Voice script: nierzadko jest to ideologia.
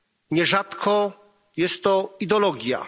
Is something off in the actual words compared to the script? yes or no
no